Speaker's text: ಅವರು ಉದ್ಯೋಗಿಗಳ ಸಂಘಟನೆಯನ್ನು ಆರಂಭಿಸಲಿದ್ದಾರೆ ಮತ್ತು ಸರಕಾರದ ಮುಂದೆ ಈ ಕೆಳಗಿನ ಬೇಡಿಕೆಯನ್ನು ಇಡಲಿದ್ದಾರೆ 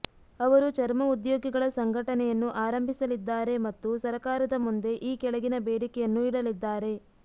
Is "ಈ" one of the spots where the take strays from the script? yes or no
no